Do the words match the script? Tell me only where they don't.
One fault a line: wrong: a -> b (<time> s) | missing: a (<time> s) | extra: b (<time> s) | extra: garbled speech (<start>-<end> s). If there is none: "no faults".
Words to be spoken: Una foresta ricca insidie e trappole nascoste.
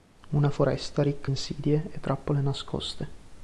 no faults